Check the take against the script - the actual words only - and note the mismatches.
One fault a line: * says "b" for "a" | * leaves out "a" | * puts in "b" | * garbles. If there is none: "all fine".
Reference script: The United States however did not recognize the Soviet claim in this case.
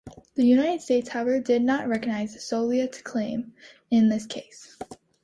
all fine